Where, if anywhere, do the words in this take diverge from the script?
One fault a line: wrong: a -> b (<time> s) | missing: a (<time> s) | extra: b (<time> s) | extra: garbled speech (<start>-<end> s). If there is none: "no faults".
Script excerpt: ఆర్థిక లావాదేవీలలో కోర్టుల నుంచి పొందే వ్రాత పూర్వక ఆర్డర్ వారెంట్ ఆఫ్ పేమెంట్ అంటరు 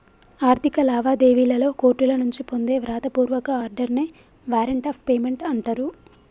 extra: నే (3.9 s)